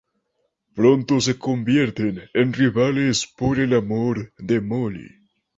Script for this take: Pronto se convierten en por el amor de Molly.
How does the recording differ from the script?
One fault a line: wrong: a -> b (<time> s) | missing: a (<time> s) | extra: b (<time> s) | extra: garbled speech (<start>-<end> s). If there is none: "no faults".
extra: rivales (2.5 s)